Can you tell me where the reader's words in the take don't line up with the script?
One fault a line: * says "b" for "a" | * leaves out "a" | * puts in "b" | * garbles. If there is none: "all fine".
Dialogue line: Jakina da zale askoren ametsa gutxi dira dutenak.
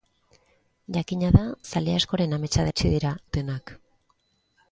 all fine